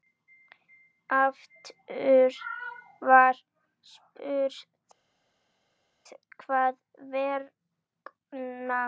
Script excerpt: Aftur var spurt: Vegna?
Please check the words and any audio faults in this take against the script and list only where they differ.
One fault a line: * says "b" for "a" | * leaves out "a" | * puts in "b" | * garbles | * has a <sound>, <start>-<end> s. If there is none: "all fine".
* puts in "Hvers"